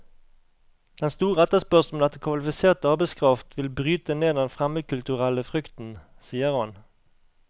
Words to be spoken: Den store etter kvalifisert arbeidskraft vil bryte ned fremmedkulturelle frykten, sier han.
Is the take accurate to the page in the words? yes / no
no